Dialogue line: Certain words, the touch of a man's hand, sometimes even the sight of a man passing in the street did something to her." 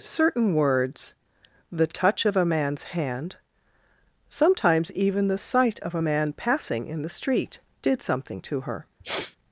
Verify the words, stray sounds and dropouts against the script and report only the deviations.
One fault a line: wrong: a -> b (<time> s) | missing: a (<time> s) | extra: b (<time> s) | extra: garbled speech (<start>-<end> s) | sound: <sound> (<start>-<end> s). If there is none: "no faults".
sound: sniff (9.0-9.4 s)